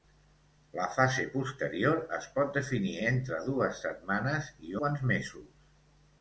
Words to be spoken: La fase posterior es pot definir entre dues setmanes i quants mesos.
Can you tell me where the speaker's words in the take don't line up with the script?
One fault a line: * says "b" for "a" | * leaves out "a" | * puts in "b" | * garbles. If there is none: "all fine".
all fine